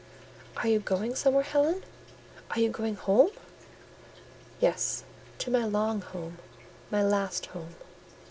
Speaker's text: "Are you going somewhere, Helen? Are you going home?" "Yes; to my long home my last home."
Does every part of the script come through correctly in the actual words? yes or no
yes